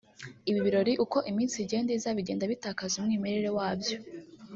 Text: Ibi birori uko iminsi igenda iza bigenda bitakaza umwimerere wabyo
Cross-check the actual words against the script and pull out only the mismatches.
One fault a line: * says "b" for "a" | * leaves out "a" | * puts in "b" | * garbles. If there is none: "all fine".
all fine